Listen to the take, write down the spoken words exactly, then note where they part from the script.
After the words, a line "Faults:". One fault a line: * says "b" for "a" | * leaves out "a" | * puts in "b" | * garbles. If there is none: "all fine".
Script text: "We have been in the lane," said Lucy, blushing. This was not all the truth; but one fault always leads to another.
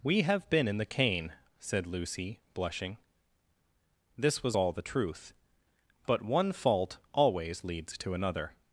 "We have been in the cane," said Lucy, blushing. This was all the truth; but one fault always leads to another.
Faults:
* says "cane" for "lane"
* leaves out "not"